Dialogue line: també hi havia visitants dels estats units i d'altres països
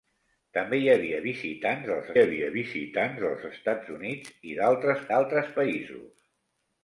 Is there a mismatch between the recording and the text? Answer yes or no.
yes